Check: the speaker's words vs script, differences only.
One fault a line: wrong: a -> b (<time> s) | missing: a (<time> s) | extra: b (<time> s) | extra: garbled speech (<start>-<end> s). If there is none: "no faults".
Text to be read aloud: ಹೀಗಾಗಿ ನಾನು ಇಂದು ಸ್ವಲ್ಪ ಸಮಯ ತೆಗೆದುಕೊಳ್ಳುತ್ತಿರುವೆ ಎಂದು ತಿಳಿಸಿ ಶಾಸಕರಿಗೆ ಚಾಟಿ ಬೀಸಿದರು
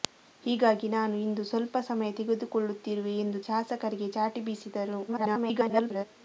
missing: ತಿಳಿಸಿ (3.4 s)
extra: garbled speech (5.1-6.0 s)